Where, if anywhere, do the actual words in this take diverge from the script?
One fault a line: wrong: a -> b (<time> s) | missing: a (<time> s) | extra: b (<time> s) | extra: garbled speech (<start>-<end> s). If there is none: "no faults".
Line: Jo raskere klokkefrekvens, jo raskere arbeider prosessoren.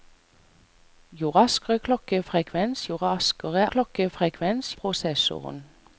wrong: arbeider -> klokkefrekvens (3.7 s)